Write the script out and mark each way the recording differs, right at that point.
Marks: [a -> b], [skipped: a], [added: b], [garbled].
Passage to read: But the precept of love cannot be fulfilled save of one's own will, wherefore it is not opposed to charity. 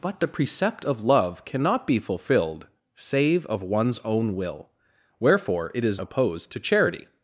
But the precept of love cannot be fulfilled save of one's own will, wherefore it is [skipped: not] opposed to charity.